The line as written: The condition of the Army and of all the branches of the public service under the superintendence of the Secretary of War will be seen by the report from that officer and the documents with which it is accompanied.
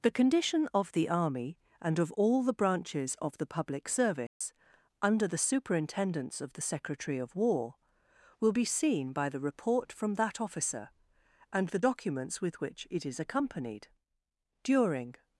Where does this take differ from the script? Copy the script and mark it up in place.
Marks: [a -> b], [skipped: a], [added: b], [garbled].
The condition of the Army and of all the branches of the public service under the superintendence of the Secretary of War will be seen by the report from that officer and the documents with which it is accompanied. [added: During]